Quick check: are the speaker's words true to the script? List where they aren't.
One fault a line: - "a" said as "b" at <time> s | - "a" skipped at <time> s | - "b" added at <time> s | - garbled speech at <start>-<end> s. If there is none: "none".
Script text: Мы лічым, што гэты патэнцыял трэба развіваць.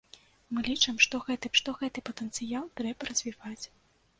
- "што гэты" added at 1.6 s